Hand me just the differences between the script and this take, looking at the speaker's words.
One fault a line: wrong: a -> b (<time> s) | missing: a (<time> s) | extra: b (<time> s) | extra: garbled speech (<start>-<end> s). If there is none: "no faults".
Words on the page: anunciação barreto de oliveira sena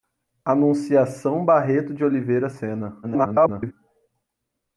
extra: garbled speech (3.0-3.7 s)